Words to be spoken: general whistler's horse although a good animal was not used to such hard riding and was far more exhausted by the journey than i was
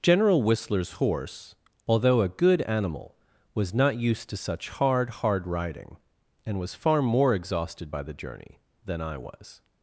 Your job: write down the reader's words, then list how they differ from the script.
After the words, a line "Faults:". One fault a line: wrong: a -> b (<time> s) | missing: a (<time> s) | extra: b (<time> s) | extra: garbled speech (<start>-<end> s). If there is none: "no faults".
general whistler's horse although a good animal was not used to such hard hard riding and was far more exhausted by the journey than i was
Faults:
extra: hard (5.2 s)